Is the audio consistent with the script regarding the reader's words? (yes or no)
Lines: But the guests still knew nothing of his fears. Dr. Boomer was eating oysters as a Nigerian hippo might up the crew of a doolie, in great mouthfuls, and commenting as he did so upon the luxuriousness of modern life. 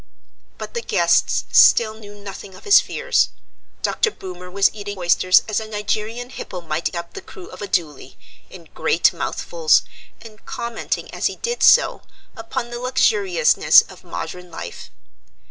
yes